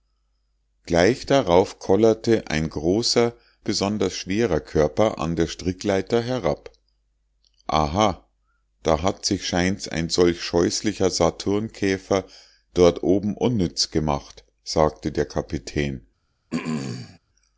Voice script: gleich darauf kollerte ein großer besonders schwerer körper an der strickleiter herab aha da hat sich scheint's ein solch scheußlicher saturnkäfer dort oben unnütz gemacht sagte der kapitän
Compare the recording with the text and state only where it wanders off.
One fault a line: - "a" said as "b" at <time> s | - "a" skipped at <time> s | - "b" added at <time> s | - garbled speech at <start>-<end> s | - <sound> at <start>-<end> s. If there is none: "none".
- throat clearing at 16.5-17.2 s